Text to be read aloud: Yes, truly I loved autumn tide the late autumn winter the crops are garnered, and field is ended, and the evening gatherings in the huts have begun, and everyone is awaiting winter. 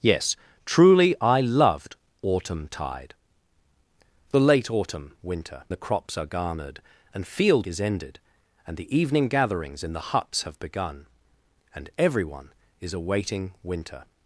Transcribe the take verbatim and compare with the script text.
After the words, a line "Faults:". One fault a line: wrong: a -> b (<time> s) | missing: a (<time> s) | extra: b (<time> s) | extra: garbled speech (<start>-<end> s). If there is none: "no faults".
Yes, truly I loved autumn tide the late autumn winter the crops are garnered, and field is ended, and the evening gatherings in the huts have begun, and everyone is awaiting winter.
Faults:
no faults